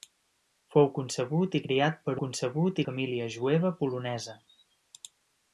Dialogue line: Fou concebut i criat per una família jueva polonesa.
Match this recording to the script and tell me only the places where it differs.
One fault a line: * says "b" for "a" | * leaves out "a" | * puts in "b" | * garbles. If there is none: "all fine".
* says "concebut" for "una"